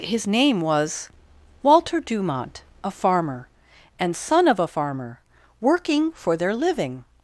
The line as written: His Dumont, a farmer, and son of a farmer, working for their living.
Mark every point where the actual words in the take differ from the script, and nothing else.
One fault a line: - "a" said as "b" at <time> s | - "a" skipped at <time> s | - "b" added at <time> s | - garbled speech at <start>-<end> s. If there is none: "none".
- "name was Walter" added at 0.2 s